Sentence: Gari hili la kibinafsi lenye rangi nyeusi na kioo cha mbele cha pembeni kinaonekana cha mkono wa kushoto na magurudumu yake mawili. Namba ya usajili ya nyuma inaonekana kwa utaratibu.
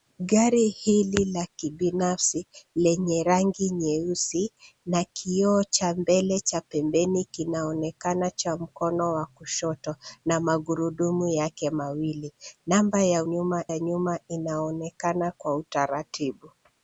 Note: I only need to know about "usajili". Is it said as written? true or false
false